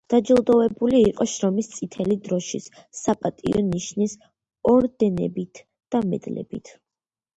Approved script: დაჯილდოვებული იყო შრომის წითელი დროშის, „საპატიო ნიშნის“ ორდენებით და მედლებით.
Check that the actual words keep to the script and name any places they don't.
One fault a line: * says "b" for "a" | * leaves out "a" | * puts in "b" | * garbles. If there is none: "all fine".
all fine